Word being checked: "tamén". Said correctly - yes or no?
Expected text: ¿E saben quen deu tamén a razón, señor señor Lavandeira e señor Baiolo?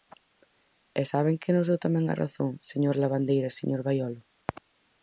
yes